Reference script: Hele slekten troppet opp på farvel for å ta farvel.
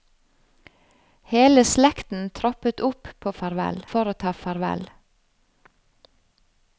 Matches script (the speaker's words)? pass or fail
pass